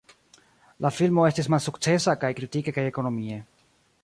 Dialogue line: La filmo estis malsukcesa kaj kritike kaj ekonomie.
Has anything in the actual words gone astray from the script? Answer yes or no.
no